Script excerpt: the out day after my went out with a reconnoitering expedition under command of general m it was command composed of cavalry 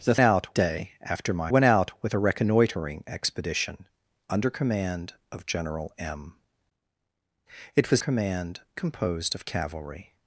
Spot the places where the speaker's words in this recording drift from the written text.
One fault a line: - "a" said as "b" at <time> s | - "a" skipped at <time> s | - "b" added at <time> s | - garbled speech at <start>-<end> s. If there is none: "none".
none